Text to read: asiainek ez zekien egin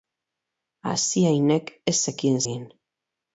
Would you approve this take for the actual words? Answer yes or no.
yes